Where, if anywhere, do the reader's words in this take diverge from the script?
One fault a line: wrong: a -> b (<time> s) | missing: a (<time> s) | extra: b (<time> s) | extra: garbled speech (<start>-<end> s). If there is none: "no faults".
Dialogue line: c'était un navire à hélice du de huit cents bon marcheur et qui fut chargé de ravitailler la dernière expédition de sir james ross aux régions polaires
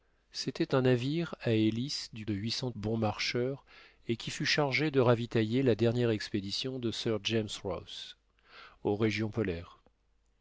no faults